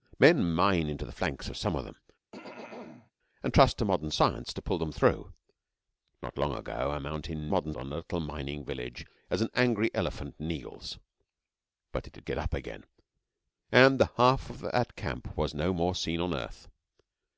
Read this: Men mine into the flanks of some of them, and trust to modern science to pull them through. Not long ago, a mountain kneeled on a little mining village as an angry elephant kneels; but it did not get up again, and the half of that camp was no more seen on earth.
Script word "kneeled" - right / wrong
wrong